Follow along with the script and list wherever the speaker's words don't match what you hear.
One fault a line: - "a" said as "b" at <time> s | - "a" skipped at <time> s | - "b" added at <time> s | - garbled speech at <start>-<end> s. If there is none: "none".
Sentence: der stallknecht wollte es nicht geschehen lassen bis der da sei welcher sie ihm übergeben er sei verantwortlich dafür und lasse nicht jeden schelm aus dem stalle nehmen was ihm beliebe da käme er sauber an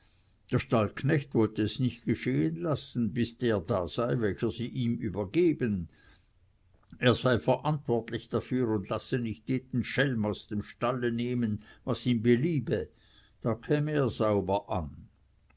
none